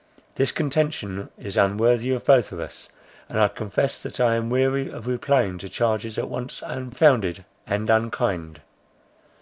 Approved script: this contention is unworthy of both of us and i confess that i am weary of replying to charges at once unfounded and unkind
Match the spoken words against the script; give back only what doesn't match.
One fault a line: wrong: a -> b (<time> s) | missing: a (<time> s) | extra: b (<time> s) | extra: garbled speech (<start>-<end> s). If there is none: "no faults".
no faults